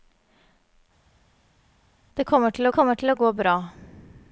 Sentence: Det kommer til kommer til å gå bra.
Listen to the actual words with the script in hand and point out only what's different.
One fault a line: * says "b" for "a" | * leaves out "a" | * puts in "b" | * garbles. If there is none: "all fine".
all fine